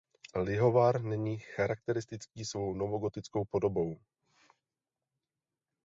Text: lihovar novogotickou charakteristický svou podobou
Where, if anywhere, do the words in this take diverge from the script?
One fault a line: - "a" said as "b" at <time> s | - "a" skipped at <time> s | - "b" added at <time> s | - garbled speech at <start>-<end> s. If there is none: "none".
- "novogotickou" said as "není" at 1.0 s
- "novogotickou" added at 2.7 s